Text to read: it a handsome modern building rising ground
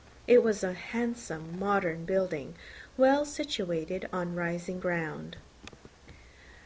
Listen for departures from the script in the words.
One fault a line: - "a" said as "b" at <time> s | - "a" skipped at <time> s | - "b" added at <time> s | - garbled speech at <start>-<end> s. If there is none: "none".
- "was" added at 0.4 s
- "well situated on" added at 3.0 s